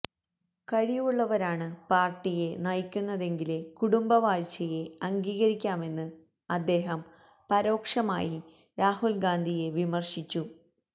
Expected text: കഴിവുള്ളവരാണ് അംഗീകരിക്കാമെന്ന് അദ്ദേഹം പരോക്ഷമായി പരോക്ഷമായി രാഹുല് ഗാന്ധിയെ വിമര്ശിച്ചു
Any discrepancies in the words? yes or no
yes